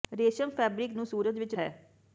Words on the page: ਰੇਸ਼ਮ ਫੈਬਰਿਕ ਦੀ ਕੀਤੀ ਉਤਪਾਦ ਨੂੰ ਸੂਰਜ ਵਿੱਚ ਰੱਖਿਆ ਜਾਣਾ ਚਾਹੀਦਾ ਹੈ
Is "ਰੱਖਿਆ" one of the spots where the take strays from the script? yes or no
yes